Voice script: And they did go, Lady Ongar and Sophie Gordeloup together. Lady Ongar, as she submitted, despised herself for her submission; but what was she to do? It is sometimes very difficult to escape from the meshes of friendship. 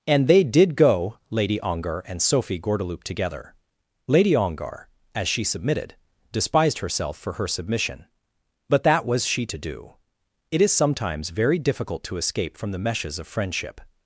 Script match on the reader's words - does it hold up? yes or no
no